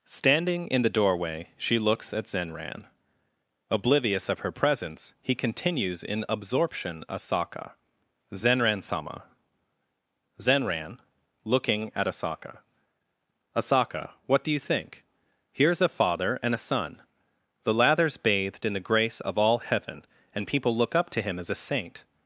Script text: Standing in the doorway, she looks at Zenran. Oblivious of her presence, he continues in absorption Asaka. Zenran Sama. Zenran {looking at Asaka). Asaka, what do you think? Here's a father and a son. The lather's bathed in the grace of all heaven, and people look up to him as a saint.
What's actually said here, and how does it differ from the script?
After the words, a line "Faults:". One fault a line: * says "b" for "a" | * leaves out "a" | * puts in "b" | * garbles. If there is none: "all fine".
Standing in the doorway, she looks at Zenran. Oblivious of her presence, he continues in absorption Asaka. Zenran Sama. Zenran {looking at Asaka). Asaka, what do you think? Here's a father and a son. The lather's bathed in the grace of all heaven, and people look up to him as a saint.
Faults:
all fine